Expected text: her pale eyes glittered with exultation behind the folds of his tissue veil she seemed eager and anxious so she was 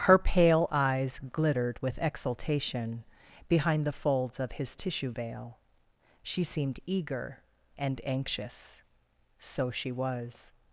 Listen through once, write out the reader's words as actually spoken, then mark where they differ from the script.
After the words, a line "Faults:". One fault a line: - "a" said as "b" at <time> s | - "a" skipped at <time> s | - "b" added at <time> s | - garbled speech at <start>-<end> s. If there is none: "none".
her pale eyes glittered with exultation behind the folds of his tissue veil she seemed eager and anxious so she was
Faults:
none